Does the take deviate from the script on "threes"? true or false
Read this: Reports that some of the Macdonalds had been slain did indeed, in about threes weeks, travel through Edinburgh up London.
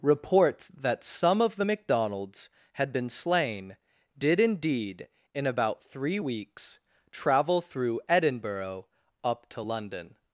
true